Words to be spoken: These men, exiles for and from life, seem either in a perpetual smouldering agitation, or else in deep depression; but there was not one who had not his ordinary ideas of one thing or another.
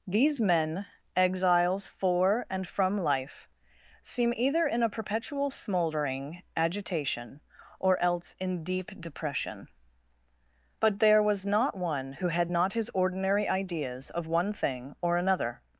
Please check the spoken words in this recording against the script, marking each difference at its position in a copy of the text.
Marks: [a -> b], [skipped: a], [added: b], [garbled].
These men, exiles for and from life, seem either in a perpetual smouldering agitation, or else in deep depression; but there was not one who had not his ordinary ideas of one thing or another.